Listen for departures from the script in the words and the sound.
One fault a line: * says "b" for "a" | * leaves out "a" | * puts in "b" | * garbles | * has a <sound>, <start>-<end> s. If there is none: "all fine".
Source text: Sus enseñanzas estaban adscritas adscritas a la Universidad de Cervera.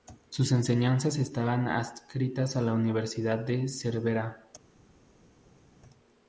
* leaves out "adscritas"